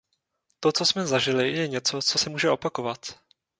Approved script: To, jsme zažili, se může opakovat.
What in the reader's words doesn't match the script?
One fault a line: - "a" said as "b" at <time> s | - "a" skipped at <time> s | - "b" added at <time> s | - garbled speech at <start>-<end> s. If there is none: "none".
- "co" added at 0.7 s
- "je něco co" added at 1.5 s